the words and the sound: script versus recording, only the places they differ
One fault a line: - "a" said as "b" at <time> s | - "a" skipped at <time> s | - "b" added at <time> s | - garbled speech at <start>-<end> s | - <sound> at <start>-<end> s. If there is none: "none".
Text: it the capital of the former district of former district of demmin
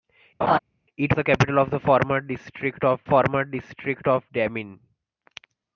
- laugh at 0.4-0.6 s